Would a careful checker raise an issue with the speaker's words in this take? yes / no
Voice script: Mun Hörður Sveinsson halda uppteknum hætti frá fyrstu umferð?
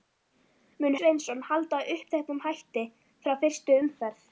yes